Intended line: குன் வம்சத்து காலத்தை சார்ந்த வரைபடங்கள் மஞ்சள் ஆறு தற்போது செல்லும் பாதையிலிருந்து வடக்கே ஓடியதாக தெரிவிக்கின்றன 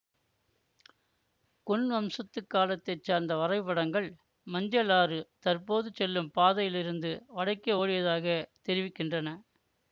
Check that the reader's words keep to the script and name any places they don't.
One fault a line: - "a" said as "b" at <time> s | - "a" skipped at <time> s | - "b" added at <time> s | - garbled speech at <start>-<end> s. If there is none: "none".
none